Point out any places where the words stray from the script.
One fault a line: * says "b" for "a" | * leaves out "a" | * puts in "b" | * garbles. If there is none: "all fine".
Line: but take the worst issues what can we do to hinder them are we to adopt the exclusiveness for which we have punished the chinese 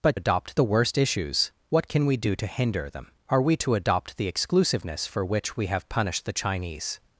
* says "adopt" for "take"